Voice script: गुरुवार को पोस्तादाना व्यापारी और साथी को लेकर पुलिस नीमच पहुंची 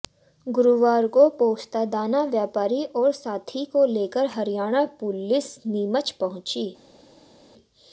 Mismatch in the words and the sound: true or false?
true